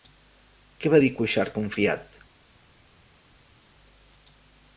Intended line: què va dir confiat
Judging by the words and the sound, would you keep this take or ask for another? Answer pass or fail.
fail